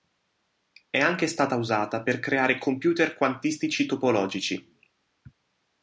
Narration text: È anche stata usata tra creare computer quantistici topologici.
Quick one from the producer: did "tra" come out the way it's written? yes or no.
no